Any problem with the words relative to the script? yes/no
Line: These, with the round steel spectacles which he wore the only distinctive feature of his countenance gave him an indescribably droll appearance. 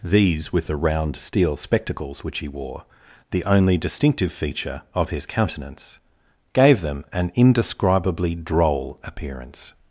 yes